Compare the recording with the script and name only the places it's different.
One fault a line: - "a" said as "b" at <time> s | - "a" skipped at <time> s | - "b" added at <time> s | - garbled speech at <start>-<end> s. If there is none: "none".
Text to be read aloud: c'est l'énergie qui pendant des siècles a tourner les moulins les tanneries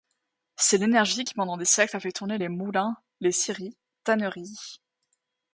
- "fait" added at 2.0 s
- "scieries" added at 3.3 s